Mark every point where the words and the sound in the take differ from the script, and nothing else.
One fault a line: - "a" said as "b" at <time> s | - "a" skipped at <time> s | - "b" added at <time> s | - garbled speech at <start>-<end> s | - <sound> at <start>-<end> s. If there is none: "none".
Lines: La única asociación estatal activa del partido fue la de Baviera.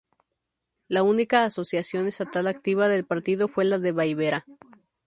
none